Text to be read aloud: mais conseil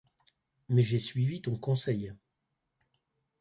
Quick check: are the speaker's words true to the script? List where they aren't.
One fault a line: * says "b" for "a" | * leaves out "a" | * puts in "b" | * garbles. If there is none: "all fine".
* puts in "j'ai suivi ton"